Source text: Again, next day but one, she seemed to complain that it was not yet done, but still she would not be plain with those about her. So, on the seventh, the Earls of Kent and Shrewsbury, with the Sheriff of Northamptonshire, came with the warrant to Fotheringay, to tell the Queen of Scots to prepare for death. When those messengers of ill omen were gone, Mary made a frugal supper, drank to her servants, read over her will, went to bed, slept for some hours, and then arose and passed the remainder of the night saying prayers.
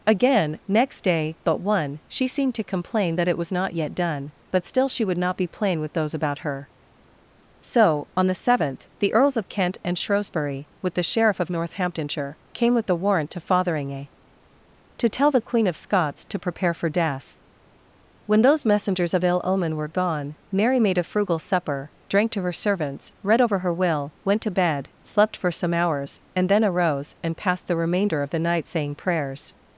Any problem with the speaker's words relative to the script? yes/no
no